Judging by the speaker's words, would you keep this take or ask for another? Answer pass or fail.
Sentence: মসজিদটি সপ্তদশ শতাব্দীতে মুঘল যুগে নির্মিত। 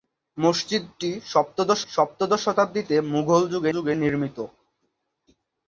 fail